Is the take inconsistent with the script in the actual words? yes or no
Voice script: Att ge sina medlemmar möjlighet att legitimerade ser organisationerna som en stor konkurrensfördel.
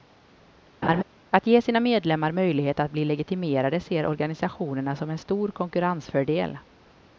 yes